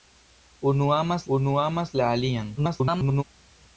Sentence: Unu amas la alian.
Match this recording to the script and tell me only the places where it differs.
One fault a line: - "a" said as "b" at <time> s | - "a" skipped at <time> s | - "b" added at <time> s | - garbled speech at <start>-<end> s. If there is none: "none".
- "unu amas" added at 1.3 s
- garbled speech at 2.6-3.2 s